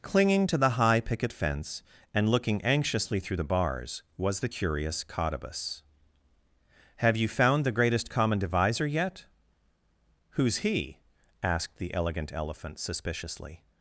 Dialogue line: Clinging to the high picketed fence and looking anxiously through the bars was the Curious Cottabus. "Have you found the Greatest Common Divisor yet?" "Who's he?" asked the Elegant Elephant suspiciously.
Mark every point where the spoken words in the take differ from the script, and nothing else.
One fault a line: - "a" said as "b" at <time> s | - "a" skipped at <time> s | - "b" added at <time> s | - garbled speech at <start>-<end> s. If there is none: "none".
- "picketed" said as "picket" at 1.0 s